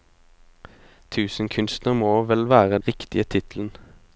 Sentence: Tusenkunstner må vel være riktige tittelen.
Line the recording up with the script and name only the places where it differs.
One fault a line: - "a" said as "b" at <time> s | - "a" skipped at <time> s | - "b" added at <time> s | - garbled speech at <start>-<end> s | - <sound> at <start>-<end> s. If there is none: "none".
none